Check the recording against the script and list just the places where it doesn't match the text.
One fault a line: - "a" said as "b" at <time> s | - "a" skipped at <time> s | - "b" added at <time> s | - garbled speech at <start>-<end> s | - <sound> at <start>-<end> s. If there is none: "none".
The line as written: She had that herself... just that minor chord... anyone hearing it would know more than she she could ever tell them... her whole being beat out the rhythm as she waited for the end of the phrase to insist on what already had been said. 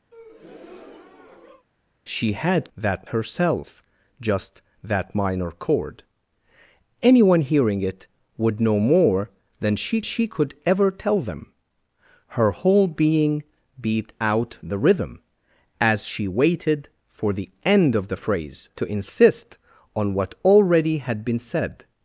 - breath at 0.1-1.7 s